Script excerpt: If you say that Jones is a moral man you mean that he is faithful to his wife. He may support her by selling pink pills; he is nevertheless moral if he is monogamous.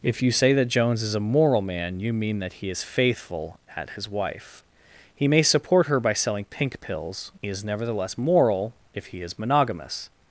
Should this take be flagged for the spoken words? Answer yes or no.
yes